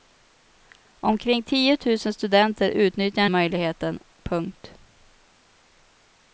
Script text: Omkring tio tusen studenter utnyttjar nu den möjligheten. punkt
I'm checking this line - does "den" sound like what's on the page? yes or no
no